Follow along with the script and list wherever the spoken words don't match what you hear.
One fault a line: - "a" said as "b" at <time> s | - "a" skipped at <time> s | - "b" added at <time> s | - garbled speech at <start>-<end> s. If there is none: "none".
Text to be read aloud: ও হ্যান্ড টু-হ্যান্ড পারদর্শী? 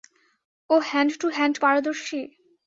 none